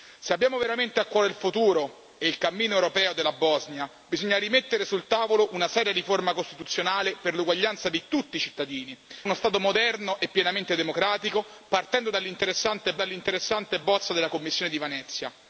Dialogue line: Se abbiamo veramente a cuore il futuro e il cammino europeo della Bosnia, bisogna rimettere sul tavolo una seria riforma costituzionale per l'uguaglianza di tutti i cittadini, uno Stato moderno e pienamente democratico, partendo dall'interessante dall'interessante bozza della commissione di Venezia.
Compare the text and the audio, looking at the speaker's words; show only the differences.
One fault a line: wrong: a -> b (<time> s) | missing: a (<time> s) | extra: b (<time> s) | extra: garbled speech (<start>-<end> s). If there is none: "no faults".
no faults